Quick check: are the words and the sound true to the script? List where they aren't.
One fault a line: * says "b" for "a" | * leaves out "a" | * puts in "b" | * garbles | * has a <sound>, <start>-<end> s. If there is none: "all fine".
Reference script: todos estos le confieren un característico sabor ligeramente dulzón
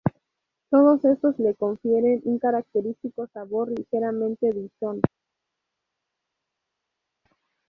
all fine